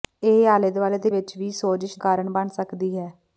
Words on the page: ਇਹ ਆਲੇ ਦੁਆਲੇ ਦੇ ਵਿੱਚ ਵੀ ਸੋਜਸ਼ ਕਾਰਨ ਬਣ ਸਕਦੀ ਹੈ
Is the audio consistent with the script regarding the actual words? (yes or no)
yes